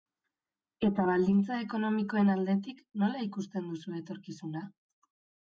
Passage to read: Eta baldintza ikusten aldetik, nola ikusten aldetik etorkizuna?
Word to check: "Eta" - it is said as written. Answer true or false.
true